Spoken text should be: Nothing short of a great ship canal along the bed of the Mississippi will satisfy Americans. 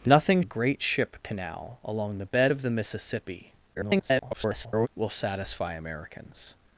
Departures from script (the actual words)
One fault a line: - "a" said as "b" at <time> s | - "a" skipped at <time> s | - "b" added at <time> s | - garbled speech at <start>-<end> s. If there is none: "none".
- "short of" skipped at 0.4 s
- garbled speech at 3.7-4.9 s